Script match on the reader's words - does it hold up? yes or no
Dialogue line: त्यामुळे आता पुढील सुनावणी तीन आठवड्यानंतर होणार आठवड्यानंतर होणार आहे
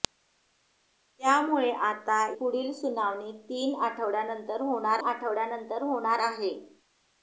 yes